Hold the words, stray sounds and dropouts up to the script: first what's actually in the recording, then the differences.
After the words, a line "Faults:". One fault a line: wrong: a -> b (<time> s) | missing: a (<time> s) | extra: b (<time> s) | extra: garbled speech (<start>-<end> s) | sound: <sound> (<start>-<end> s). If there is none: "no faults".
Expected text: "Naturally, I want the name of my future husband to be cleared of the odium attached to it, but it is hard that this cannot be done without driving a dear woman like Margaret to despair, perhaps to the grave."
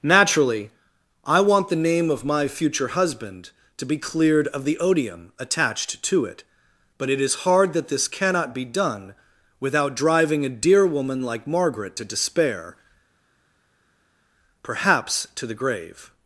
"Naturally, I want the name of my future husband to be cleared of the odium attached to it, but it is hard that this cannot be done without driving a dear woman like Margaret to despair, perhaps to the grave."
Faults:
no faults